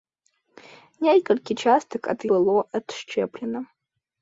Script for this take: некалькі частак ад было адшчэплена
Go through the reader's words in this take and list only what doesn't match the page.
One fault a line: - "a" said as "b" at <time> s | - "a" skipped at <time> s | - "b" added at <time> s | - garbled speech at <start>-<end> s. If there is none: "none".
none